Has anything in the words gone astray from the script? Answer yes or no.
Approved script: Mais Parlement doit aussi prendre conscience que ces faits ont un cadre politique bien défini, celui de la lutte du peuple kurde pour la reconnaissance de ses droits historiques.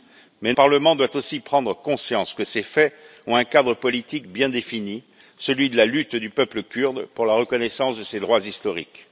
no